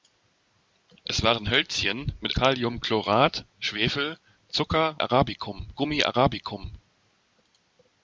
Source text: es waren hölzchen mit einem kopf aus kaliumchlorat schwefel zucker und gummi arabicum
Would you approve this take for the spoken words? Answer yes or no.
no